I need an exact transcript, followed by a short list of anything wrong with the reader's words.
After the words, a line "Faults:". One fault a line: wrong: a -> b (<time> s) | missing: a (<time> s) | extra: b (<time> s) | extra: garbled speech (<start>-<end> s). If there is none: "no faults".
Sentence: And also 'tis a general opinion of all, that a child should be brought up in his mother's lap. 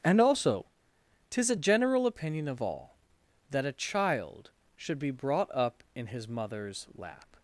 And also 'tis a general opinion of all, that a child should be brought up in his mother's lap.
Faults:
no faults